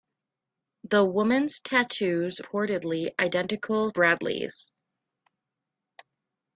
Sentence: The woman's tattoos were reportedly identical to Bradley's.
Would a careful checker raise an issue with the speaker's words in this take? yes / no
yes